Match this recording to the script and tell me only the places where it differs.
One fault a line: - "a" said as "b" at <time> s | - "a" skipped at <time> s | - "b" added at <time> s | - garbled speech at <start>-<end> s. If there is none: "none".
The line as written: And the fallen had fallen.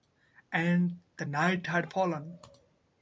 - "fallen" said as "night" at 1.2 s